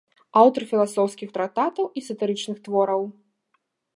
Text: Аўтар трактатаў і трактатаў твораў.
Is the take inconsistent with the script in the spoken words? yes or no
yes